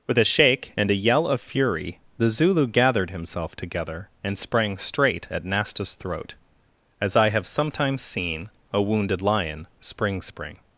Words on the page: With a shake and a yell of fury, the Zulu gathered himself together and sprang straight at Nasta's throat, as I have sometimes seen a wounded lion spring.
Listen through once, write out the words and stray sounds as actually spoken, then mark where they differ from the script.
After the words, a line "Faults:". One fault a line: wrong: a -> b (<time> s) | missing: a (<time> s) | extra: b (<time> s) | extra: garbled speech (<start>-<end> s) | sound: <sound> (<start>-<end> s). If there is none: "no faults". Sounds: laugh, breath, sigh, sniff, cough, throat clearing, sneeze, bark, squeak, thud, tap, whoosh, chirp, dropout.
With a shake and a yell of fury, the Zulu gathered himself together and sprang straight at Nasta's throat, as I have sometimes seen a wounded lion spring spring.
Faults:
extra: spring (10.2 s)